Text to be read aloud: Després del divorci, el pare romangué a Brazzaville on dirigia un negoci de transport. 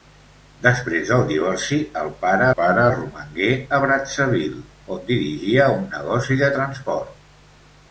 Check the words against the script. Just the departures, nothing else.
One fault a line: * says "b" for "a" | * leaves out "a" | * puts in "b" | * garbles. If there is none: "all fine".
* puts in "pare"